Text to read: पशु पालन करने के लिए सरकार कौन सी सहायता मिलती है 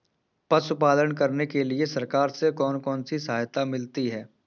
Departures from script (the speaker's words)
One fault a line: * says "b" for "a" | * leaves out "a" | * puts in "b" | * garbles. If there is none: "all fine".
* puts in "से कौन"